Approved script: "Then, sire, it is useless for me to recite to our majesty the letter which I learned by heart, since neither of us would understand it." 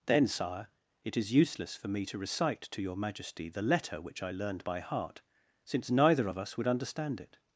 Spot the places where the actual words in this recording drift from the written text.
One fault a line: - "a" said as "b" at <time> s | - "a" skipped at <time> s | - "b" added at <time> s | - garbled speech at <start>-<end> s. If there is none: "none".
- "our" said as "your" at 2.8 s